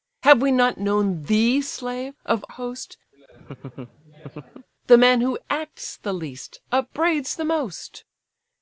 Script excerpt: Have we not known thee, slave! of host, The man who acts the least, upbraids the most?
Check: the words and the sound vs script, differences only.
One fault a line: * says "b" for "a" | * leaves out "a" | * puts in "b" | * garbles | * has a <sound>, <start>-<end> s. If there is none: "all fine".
* has a laugh, 3.1-4.7 s